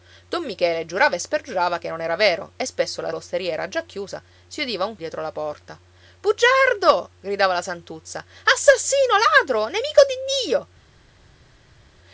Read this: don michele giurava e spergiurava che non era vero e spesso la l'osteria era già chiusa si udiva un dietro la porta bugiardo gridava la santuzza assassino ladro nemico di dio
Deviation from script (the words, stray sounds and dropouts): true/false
false